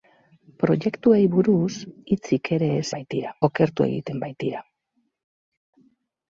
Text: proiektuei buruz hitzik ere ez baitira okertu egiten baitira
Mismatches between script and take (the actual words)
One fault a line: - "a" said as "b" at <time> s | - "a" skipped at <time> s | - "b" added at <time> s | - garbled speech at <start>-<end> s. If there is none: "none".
none